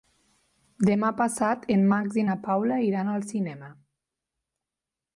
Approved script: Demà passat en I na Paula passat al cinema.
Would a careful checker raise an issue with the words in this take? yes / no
yes